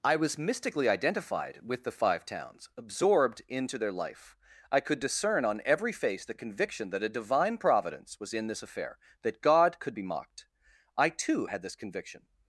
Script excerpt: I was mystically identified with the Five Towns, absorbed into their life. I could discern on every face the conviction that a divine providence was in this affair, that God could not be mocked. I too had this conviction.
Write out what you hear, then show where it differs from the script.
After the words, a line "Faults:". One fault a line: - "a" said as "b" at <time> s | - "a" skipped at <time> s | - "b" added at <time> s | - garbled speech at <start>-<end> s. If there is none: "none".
I was mystically identified with the Five Towns, absorbed into their life. I could discern on every face the conviction that a divine providence was in this affair, that God could be mocked. I too had this conviction.
Faults:
- "not" skipped at 10.0 s